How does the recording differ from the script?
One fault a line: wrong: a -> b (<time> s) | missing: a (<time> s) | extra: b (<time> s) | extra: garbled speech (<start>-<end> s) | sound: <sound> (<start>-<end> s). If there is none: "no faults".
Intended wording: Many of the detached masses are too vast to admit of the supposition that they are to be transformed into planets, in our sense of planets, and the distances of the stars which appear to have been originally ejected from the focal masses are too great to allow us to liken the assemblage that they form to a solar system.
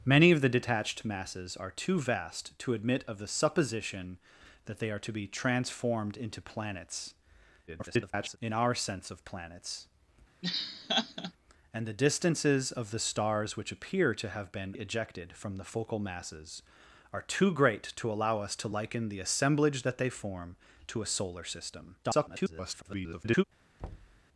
extra: garbled speech (7.7-8.4 s)
sound: laugh (10.4-11.3 s)
missing: originally (14.7 s)
extra: garbled speech (22.0-23.4 s)
sound: thud (23.8-24.2 s)